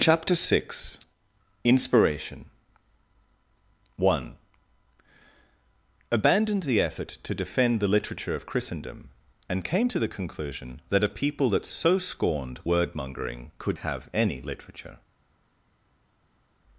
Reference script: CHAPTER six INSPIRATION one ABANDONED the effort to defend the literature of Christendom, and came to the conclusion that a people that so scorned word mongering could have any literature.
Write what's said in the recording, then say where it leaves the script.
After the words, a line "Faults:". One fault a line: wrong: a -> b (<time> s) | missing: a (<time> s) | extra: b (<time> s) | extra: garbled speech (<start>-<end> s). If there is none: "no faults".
CHAPTER six INSPIRATION one ABANDONED the effort to defend the literature of Christendom, and came to the conclusion that a people that so scorned word mongering could have any literature.
Faults:
no faults